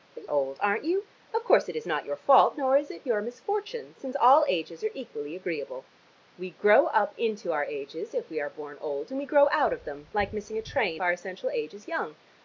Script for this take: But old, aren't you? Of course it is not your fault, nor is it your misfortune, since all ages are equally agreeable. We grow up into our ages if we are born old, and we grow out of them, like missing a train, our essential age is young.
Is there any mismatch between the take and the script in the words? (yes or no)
no